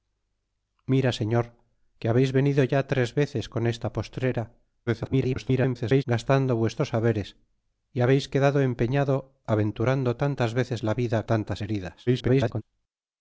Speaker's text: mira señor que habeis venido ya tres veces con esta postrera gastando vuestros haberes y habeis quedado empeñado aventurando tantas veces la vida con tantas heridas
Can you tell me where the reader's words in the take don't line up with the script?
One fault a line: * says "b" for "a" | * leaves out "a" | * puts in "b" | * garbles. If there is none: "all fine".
* garbles
* leaves out "con"
* garbles